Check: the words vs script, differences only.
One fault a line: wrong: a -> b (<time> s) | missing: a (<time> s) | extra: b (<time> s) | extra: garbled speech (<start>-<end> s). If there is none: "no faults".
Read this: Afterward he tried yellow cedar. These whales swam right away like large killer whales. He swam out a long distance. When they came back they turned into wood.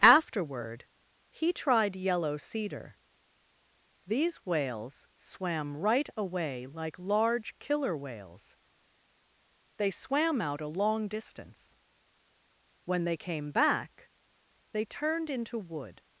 wrong: He -> They (9.8 s)